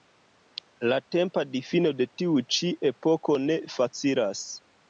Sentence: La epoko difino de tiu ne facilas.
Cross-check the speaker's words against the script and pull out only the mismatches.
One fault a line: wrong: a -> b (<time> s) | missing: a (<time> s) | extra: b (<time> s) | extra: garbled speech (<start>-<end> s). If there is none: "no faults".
wrong: epoko -> tempa (1.1 s)
extra: ĉi epoko (2.6 s)